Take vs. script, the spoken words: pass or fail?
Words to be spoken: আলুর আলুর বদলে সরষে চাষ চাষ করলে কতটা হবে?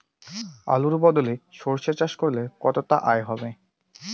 fail